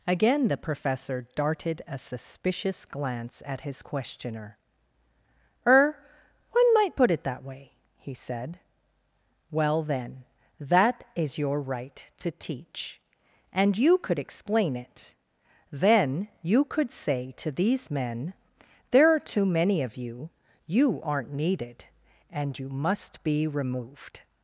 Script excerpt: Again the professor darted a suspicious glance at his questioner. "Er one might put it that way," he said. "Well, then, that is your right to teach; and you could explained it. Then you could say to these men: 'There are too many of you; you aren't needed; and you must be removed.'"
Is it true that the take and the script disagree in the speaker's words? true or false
true